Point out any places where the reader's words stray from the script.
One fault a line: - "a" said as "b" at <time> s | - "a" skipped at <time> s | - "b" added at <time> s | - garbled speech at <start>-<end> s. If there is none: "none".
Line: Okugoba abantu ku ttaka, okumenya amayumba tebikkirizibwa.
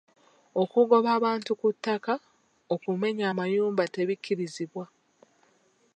none